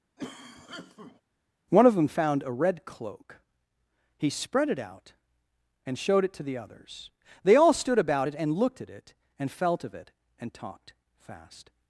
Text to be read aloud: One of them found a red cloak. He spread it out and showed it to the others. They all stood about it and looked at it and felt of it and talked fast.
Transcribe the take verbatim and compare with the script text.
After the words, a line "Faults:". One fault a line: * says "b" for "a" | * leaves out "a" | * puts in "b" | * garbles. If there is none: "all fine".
One of them found a red cloak. He spread it out and showed it to the others. They all stood about it and looked at it and felt of it and talked fast.
Faults:
all fine